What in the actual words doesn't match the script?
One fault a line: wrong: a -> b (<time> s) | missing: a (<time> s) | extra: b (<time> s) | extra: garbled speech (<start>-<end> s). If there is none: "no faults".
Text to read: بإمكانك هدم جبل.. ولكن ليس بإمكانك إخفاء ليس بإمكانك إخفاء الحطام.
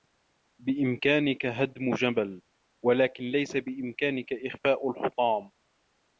missing: ليس بإمكانك إخفاء (4.9 s)